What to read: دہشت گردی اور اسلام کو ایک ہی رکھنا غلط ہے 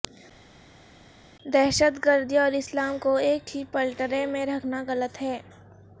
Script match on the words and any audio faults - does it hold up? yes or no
no